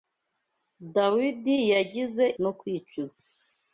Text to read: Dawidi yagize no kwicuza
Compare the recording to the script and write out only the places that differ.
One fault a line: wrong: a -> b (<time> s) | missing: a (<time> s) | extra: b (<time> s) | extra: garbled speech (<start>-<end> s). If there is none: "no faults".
no faults